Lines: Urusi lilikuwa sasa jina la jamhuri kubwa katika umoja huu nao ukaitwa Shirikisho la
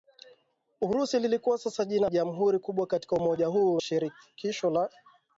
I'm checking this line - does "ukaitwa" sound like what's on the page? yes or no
no